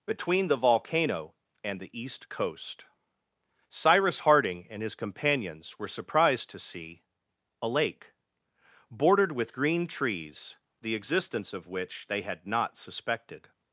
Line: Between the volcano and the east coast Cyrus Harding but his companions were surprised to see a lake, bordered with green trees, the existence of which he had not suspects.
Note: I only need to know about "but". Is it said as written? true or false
false